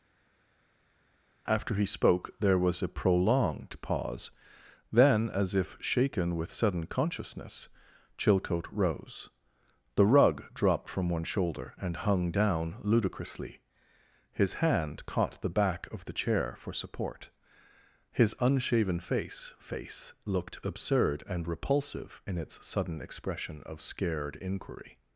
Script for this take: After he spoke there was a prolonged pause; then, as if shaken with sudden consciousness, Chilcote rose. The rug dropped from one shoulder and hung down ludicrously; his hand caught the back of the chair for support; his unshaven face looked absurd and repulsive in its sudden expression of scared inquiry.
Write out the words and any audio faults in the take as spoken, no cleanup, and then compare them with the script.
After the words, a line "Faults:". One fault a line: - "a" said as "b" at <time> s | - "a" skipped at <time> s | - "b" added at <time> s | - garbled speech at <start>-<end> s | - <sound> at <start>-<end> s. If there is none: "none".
After he spoke there was a prolonged pause; then, as if shaken with sudden consciousness, Chilcote rose. The rug dropped from one shoulder and hung down ludicrously; his hand caught the back of the chair for support; his unshaven face face looked absurd and repulsive in its sudden expression of scared inquiry.
Faults:
- "face" added at 19.6 s